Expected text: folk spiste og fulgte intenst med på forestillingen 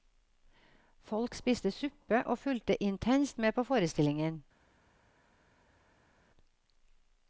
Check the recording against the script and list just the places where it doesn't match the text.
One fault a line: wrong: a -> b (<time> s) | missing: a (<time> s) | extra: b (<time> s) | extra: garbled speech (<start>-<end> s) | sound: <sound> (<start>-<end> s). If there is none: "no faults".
extra: suppe (1.7 s)